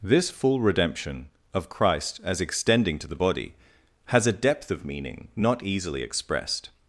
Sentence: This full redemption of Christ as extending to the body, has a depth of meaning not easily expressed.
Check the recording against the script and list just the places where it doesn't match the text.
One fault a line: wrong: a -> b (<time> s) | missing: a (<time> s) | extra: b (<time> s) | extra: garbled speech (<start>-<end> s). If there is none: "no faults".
no faults